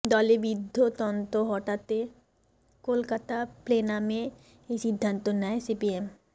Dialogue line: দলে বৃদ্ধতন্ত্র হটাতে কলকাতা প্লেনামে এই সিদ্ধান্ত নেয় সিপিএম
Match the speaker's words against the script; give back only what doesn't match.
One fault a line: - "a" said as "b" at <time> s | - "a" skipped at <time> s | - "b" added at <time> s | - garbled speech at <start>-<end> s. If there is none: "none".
none